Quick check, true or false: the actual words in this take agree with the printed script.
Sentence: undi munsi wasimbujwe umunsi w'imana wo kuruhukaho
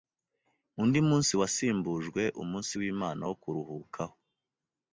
true